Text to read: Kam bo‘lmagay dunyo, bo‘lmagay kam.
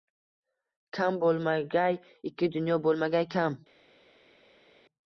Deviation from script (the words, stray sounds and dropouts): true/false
true